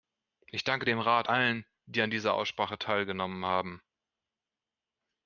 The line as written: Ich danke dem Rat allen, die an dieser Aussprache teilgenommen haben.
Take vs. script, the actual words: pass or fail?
pass